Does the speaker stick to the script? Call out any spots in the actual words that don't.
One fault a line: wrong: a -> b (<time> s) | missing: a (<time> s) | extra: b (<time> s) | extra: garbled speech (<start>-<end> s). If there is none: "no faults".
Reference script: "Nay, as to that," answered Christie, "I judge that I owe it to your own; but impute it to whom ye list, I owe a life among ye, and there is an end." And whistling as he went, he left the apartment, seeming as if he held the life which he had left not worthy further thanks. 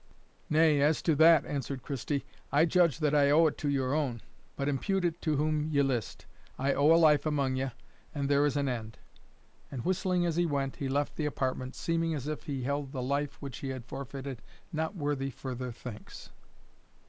wrong: left -> forfeited (13.9 s)